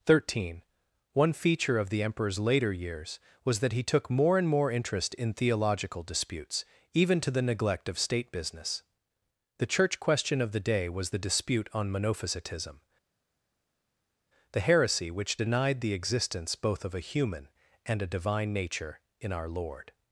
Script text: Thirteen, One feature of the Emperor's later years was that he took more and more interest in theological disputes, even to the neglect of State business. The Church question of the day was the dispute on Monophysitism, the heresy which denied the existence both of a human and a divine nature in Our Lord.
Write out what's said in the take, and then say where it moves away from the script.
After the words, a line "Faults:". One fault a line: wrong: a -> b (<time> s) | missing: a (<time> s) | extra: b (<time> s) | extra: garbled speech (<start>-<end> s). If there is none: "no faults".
Thirteen, One feature of the Emperor's later years was that he took more and more interest in theological disputes, even to the neglect of State business. The Church question of the day was the dispute on Monophysitism, the heresy which denied the existence both of a human and a divine nature in Our Lord.
Faults:
no faults